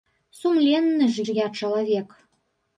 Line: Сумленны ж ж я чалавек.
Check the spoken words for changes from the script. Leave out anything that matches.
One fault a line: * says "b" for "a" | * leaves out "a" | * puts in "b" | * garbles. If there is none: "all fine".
all fine